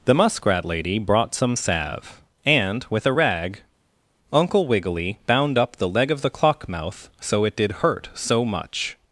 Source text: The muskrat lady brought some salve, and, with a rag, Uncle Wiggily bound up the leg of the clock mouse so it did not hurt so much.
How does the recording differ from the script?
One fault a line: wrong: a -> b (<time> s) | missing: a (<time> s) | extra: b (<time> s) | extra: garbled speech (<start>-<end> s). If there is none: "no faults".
wrong: mouse -> mouth (6.7 s)
missing: not (7.7 s)